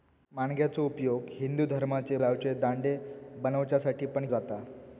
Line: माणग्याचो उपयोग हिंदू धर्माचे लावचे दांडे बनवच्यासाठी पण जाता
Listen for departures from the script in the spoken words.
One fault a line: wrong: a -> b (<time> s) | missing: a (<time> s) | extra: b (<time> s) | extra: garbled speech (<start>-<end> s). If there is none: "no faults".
no faults